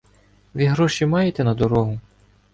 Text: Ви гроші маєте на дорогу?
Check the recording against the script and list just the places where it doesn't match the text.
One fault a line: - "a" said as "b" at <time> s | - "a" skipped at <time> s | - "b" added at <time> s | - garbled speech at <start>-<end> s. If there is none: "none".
none